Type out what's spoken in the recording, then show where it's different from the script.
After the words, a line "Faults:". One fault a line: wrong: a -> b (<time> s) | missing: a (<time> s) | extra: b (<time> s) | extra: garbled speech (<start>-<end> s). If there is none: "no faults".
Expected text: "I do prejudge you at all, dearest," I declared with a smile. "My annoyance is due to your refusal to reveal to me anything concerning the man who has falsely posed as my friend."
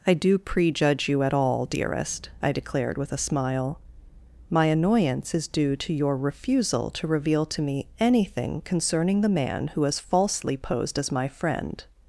"I do prejudge you at all, dearest," I declared with a smile. "My annoyance is due to your refusal to reveal to me anything concerning the man who has falsely posed as my friend."
Faults:
no faults